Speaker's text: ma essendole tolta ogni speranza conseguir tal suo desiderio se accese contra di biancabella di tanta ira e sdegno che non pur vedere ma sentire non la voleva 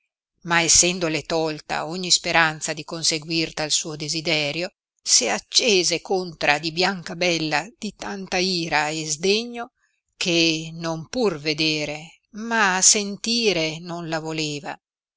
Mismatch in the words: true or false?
true